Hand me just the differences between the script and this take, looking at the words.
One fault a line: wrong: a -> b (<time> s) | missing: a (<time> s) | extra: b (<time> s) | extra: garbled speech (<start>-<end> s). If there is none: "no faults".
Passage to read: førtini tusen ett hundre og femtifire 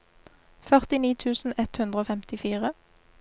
no faults